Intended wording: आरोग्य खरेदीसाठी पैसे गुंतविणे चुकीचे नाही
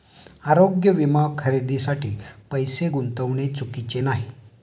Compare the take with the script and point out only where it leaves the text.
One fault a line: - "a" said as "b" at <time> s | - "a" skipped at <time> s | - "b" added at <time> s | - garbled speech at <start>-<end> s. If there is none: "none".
- "विमा" added at 0.9 s